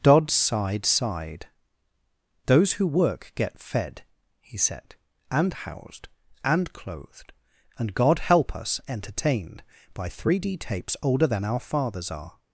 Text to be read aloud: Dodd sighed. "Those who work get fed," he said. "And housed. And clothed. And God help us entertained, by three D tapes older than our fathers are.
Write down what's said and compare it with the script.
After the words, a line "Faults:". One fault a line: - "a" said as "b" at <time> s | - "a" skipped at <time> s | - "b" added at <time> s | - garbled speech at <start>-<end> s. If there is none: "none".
Dodd sighed sighed. "Those who work get fed," he said. "And housed. And clothed. And God help us entertained, by three D tapes older than our fathers are.
Faults:
- "sighed" added at 0.8 s